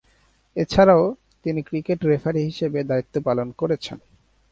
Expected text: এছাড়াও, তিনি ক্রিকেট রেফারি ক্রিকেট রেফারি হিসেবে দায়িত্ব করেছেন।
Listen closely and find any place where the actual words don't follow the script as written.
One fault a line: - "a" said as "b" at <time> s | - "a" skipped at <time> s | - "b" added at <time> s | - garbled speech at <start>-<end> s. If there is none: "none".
- "ক্রিকেট রেফারি" skipped at 2.4 s
- "পালন" added at 3.2 s